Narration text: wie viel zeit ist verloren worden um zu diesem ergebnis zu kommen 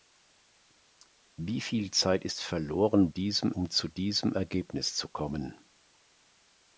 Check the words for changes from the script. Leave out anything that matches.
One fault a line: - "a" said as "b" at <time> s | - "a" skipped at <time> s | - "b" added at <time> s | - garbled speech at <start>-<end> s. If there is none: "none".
- "worden" said as "diesem" at 3.1 s